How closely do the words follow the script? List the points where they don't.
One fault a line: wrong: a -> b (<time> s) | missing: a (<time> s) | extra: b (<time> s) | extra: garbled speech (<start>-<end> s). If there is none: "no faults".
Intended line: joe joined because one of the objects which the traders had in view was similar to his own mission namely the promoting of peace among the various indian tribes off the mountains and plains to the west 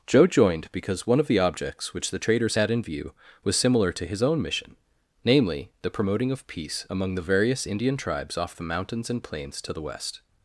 no faults